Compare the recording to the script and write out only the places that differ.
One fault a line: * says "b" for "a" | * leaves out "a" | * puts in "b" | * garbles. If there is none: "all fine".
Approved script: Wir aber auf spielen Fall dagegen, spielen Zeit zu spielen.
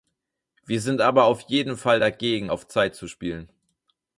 * puts in "sind"
* says "jeden" for "spielen"
* says "auf" for "spielen"